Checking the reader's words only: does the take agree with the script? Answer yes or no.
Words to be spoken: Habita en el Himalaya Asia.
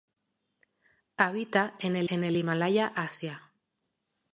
no